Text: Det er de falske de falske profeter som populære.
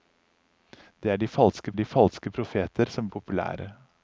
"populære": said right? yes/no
yes